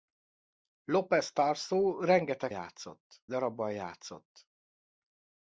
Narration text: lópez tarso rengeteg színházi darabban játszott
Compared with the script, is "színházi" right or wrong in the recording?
wrong